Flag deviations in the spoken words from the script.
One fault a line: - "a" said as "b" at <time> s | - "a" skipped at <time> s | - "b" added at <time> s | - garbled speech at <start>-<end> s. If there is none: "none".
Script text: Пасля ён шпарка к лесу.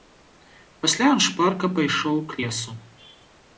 - "пайшоў" added at 1.8 s